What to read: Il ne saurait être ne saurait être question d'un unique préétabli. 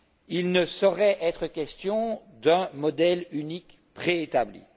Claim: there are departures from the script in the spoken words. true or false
true